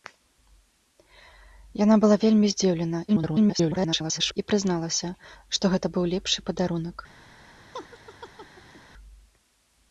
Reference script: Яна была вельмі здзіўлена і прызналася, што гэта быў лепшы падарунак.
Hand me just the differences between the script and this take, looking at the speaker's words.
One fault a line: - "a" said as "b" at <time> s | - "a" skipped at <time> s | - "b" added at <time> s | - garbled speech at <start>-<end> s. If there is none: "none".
- garbled speech at 3.1-4.4 s